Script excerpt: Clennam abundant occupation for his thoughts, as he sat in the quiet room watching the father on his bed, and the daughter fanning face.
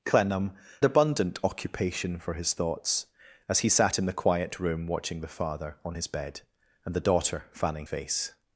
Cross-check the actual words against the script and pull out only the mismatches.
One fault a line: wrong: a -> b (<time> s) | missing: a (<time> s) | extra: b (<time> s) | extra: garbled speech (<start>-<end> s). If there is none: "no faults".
no faults